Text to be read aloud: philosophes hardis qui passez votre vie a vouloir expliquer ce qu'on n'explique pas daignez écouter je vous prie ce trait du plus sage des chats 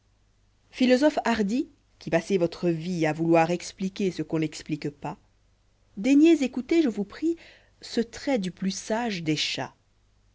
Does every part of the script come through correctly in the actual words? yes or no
yes